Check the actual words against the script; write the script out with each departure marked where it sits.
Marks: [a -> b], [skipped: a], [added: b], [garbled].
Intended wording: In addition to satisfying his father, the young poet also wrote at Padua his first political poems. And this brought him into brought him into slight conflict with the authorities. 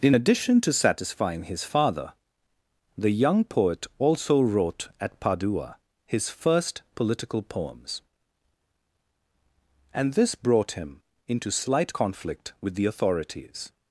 In addition to satisfying his father, the young poet also wrote at Padua his first political poems. And this brought him into [skipped: brought him into] slight conflict with the authorities.